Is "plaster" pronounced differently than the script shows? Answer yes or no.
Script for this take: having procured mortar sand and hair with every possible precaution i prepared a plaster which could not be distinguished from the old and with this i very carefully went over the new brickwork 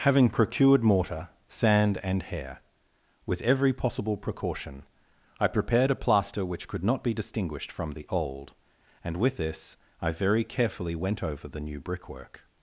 no